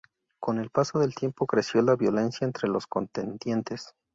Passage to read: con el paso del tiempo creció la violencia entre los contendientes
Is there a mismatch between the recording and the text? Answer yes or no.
no